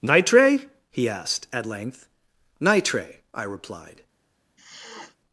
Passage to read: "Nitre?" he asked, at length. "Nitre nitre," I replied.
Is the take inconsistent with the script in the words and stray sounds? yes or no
yes